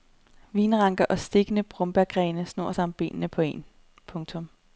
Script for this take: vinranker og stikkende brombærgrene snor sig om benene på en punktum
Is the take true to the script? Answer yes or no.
yes